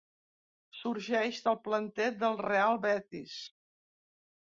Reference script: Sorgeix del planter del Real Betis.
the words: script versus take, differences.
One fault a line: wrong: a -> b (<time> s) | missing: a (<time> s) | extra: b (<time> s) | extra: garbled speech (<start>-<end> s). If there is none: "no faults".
no faults